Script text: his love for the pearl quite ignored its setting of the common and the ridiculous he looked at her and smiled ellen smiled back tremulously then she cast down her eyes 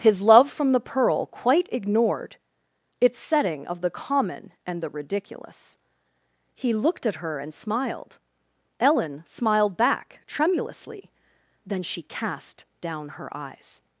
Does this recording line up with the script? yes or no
no